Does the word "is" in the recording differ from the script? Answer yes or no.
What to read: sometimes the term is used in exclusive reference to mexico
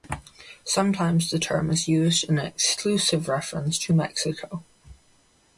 no